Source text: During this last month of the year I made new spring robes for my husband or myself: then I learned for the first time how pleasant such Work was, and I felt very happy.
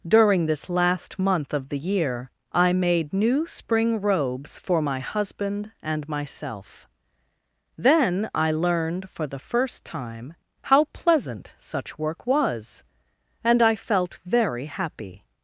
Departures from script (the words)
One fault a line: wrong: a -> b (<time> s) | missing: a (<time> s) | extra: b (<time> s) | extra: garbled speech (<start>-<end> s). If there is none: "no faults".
wrong: or -> and (5.8 s)